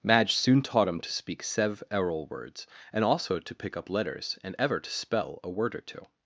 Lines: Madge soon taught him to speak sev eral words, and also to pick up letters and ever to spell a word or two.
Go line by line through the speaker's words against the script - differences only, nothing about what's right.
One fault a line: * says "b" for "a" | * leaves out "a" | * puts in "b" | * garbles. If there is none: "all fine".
all fine